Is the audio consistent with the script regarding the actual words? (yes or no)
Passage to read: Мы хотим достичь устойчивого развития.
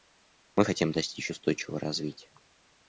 yes